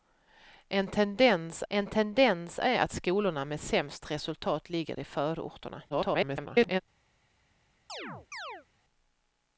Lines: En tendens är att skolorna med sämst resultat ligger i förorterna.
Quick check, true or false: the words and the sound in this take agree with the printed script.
false